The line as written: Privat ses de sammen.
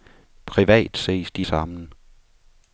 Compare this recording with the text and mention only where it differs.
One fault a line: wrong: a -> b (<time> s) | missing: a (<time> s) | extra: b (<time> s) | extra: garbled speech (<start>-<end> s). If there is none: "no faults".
no faults